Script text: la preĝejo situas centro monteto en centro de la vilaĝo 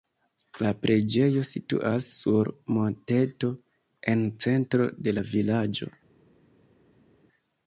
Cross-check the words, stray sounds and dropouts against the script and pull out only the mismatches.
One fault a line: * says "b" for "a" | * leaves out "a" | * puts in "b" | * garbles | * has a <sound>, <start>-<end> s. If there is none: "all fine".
* says "sur" for "centro"